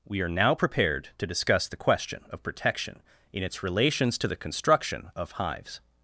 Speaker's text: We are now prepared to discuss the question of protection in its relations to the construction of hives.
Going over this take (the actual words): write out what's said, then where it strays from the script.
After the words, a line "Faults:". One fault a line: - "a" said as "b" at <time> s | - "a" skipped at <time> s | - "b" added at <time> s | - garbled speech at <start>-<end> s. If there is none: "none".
We are now prepared to discuss the question of protection in its relations to the construction of hives.
Faults:
none